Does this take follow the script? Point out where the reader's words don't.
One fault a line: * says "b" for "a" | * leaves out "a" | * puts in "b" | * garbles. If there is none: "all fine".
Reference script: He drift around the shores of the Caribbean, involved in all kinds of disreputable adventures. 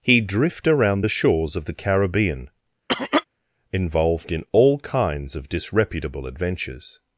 all fine